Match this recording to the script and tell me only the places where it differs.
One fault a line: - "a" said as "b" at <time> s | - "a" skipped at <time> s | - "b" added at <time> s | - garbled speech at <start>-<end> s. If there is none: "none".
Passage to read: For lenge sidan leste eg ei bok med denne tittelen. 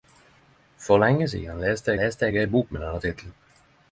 - "leste" added at 2.0 s